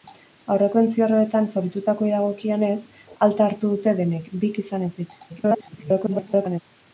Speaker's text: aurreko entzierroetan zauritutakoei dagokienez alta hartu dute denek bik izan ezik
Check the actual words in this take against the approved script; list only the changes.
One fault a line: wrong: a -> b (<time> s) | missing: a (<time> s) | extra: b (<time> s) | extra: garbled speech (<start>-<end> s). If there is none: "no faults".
extra: garbled speech (5.3-6.6 s)